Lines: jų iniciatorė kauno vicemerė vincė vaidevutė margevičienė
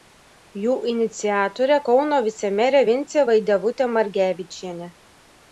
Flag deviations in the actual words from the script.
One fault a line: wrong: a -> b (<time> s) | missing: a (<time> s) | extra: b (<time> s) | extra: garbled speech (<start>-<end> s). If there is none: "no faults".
no faults